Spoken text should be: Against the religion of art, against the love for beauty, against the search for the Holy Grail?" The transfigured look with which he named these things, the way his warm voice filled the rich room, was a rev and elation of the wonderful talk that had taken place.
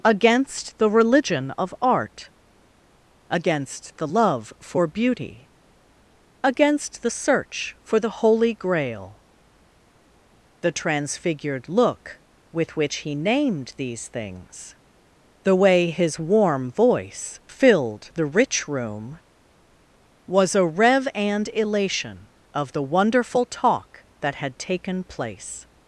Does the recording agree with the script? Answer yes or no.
yes